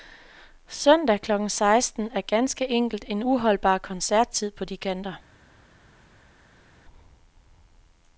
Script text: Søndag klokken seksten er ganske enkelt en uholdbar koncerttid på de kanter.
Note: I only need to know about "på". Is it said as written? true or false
true